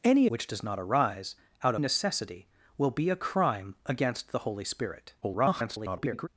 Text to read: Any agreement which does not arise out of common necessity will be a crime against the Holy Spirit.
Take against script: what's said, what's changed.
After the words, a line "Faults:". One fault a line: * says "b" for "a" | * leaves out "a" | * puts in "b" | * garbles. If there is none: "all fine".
Any which does not arise out necessity will be a crime against the Holy Spirit. [garbled]
Faults:
* leaves out "agreement"
* leaves out "of common"
* garbles